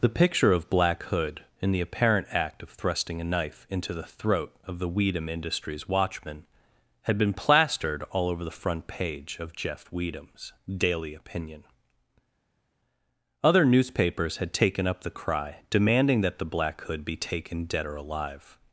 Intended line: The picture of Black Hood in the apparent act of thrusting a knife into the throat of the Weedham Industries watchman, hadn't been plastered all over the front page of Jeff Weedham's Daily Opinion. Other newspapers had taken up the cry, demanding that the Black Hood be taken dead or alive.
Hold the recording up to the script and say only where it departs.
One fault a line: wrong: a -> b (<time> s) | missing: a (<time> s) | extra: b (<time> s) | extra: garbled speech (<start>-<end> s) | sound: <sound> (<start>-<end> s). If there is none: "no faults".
wrong: hadn't -> had (7.0 s)